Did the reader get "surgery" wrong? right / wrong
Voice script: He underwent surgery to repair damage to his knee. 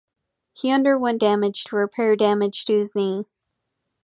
wrong